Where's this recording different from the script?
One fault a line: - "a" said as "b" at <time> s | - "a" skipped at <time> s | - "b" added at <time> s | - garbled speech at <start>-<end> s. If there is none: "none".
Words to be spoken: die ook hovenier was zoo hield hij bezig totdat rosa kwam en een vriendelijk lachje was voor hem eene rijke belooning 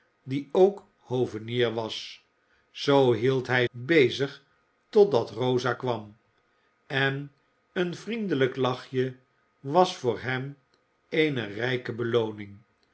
none